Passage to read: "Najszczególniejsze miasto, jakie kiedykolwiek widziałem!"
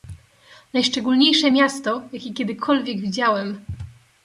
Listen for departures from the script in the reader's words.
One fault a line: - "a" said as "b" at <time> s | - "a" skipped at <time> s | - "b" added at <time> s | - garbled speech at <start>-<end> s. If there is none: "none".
none